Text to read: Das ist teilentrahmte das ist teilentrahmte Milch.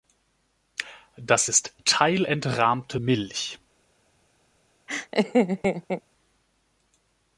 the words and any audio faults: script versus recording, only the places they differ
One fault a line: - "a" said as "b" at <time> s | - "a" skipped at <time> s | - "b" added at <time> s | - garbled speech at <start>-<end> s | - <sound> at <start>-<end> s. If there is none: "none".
- "das ist teilentrahmte" skipped at 3.0 s
- laugh at 4.9-6.0 s